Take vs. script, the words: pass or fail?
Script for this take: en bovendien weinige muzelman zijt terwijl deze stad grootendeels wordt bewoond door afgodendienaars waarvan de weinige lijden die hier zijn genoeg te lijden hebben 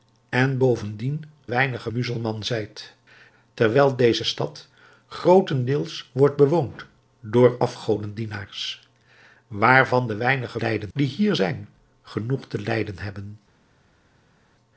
pass